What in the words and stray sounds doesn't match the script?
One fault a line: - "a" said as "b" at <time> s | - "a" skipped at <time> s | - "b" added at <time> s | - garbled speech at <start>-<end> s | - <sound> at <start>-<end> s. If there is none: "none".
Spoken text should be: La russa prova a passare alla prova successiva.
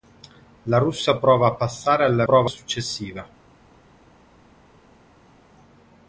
none